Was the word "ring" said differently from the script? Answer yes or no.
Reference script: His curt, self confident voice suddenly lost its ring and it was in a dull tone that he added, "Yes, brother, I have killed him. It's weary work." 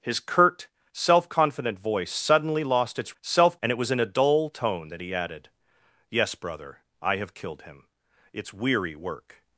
yes